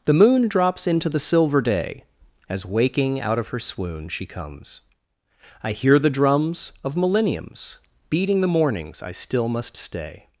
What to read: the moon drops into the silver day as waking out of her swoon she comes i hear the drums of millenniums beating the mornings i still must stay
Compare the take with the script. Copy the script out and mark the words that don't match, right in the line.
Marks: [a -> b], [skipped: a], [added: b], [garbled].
the moon drops into the silver day as waking out of her swoon she comes i hear the drums of millenniums beating the mornings i still must stay